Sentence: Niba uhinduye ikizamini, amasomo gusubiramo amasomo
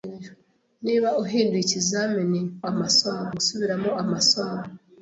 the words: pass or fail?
pass